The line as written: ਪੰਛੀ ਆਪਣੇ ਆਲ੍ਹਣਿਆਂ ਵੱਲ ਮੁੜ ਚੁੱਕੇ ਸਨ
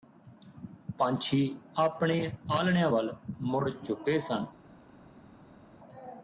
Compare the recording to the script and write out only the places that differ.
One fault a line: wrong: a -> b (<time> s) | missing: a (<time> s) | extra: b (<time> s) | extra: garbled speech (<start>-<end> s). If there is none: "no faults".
no faults